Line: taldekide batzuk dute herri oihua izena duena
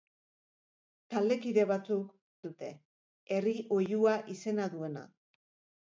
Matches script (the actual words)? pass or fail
pass